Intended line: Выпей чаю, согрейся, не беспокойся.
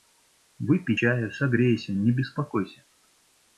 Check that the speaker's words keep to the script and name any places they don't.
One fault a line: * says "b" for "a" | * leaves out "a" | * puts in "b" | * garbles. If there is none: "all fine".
all fine